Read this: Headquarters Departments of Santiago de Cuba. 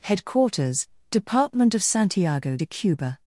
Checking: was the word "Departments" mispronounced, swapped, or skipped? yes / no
yes